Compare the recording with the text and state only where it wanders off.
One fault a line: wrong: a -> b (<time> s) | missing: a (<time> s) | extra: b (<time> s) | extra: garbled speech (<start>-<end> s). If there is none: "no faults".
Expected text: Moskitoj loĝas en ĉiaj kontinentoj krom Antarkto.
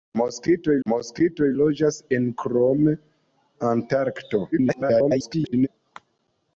extra: moskitoj (0.9 s)
missing: ĉiaj kontinentoj (2.3 s)
extra: garbled speech (4.5-5.7 s)